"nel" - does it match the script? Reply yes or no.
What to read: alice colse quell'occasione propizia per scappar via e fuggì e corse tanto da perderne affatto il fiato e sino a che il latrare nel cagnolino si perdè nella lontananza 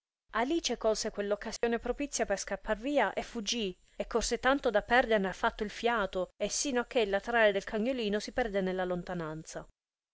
no